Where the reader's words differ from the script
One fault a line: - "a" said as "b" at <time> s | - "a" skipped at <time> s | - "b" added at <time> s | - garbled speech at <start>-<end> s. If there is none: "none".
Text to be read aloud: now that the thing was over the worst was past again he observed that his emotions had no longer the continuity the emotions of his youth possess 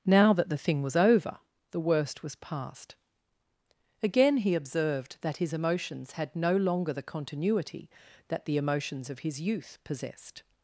- "that" added at 8.3 s
- "possess" said as "possessed" at 9.8 s